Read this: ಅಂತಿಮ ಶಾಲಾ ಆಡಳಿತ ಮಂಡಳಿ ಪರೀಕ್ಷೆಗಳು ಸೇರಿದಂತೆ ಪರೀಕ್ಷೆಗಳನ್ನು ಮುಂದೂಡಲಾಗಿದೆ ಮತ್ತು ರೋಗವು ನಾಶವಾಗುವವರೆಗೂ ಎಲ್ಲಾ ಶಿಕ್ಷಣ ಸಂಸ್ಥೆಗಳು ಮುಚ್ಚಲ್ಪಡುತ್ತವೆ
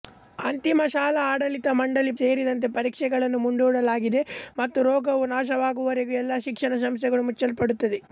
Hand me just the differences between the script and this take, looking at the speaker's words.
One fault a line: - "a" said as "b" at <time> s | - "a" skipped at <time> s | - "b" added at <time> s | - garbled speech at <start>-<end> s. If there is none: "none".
- "ಪರೀಕ್ಷೆಗಳು" skipped at 2.1 s